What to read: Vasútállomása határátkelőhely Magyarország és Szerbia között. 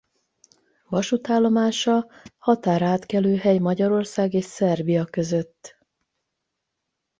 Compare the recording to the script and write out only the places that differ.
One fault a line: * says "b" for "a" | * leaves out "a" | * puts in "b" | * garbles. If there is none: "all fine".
all fine